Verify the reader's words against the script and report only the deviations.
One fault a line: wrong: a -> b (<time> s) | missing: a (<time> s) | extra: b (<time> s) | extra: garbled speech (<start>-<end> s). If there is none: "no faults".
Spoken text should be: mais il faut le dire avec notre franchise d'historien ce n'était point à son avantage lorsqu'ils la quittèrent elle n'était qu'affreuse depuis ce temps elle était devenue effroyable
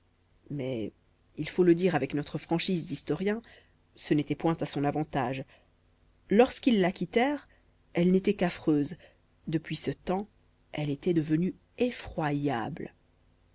no faults